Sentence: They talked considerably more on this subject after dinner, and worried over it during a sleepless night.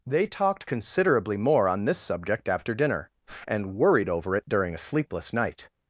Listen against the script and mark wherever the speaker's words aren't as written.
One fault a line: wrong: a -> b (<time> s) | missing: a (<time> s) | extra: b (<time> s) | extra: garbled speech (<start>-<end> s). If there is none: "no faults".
no faults